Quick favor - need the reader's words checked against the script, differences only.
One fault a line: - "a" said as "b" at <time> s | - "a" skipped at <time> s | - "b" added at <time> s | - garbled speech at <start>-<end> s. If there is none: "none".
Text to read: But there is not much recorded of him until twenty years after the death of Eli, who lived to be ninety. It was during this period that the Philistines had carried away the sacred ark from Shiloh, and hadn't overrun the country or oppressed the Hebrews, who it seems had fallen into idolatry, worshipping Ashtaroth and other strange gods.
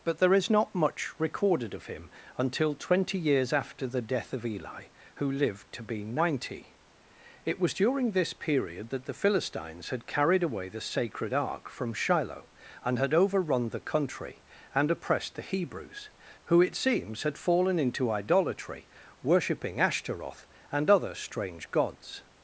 - "hadn't" said as "had" at 13.0 s
- "or" said as "and" at 14.7 s